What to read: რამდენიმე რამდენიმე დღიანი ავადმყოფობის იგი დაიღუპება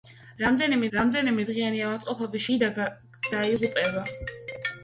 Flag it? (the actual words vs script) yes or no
no